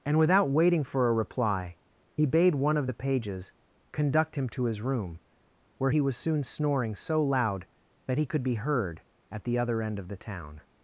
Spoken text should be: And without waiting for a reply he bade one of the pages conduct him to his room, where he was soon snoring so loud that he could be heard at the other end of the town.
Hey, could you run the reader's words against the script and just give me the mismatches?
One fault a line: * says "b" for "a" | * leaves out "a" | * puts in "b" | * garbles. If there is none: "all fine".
all fine